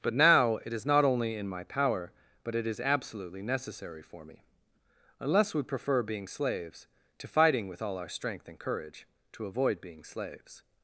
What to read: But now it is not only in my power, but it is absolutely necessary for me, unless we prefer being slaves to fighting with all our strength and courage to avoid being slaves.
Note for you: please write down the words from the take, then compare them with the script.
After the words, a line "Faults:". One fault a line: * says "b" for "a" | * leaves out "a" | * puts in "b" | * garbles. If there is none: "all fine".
But now it is not only in my power, but it is absolutely necessary for me, unless we prefer being slaves to fighting with all our strength and courage to avoid being slaves.
Faults:
all fine